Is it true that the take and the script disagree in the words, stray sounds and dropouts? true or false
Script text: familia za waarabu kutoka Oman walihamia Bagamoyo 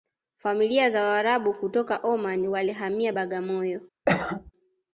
true